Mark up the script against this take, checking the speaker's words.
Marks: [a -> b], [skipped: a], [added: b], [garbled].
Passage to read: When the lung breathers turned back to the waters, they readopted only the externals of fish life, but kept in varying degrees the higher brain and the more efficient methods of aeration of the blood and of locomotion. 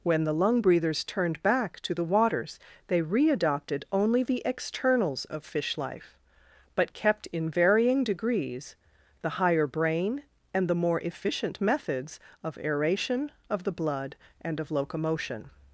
When the lung breathers turned back to the waters, they readopted only the externals of fish life, but kept in varying degrees the higher brain and the more efficient methods of aeration of the blood and of locomotion.